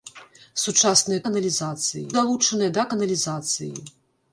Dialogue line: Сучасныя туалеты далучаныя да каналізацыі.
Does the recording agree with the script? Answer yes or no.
no